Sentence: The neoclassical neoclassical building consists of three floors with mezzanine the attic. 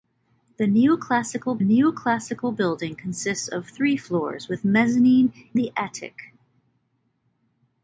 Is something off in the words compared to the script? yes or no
no